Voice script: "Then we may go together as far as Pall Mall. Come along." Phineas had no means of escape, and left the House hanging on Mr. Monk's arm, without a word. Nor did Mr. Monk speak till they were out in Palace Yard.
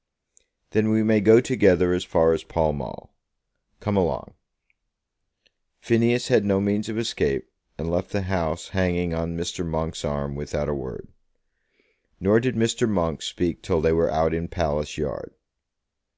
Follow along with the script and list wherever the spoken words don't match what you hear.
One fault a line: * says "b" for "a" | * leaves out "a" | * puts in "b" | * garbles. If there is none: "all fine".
all fine